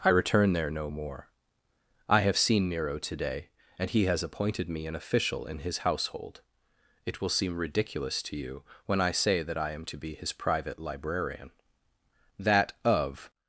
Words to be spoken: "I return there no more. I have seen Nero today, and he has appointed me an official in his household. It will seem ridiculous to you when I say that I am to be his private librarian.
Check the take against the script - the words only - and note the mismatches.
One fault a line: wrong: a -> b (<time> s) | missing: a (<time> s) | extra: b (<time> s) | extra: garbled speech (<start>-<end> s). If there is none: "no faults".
extra: That of (12.4 s)